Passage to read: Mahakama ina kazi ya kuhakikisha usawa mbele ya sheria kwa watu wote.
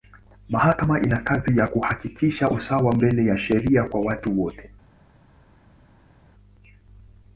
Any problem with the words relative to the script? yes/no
no